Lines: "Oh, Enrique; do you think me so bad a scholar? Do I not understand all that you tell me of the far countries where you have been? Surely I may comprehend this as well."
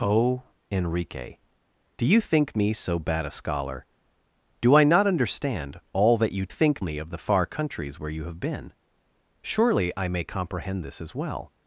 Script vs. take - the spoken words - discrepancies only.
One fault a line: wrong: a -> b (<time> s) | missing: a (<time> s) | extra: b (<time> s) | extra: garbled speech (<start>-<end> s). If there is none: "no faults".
wrong: tell -> think (6.5 s)